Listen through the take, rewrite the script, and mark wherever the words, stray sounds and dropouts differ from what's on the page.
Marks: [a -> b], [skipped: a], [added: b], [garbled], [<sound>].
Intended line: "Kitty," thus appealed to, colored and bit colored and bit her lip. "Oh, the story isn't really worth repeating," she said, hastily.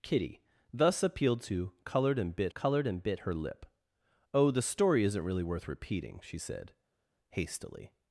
"Kitty," thus appealed to, colored and bit colored and bit her lip. "Oh, the story isn't really worth repeating," she said, hastily.